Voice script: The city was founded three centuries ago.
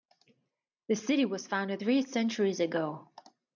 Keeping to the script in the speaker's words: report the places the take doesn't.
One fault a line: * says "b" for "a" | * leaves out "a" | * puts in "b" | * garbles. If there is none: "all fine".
all fine